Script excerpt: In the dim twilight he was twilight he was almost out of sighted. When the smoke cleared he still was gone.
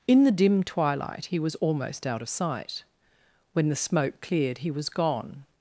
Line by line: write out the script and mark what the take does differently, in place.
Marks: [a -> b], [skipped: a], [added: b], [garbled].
In the dim twilight he was [skipped: twilight he was] almost out of [sighted. -> sight] When the smoke cleared he [skipped: still] was gone.